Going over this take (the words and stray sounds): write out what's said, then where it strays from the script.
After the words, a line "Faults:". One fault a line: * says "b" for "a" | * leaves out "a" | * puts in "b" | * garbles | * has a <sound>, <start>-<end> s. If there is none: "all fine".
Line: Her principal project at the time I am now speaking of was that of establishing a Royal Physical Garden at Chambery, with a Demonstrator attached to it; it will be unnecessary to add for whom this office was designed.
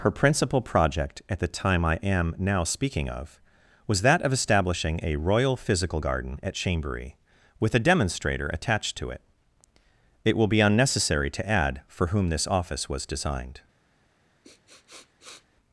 Her principal project at the time I am now speaking of was that of establishing a Royal Physical Garden at Chambery, with a Demonstrator attached to it; it will be unnecessary to add for whom this office was designed.
Faults:
* has a sniff, 14.4-15.5 s